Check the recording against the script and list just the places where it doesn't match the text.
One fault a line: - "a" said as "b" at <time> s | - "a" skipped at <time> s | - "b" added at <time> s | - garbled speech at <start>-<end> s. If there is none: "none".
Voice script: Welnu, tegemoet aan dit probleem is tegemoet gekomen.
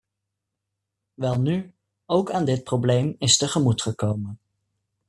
- "tegemoet" said as "ook" at 2.1 s